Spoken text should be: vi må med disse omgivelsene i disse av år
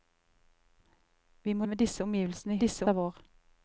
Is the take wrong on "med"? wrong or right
right